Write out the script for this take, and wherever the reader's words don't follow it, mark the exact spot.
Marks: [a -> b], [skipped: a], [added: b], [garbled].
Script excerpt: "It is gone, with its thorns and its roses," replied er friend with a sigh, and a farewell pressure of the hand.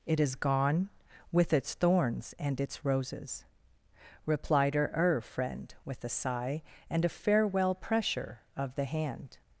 "It is gone, with its thorns and its roses," replied [added: her] er friend with a sigh, and a farewell pressure of the hand.